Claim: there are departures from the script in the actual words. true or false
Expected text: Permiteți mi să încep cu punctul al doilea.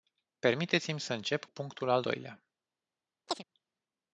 true